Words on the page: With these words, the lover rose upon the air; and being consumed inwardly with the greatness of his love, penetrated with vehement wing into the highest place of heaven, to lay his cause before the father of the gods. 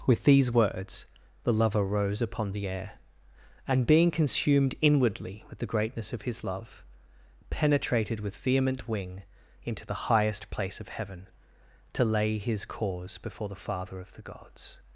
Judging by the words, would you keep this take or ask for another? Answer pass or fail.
pass